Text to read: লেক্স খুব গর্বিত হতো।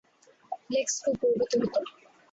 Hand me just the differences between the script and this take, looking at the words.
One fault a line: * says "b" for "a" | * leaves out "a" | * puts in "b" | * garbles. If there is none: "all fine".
all fine